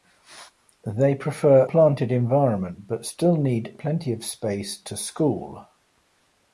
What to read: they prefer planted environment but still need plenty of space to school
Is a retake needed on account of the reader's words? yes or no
no